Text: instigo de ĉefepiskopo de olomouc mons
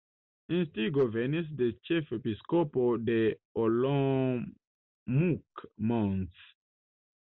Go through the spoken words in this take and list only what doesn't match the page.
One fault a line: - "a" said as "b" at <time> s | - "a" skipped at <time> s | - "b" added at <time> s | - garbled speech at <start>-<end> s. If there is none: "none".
- "venis" added at 1.1 s